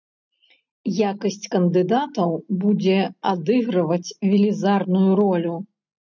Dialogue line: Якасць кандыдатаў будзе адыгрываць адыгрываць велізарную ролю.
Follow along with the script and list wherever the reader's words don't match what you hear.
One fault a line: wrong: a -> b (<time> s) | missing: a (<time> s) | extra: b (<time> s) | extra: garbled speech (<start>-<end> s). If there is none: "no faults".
missing: адыгрываць (4.1 s)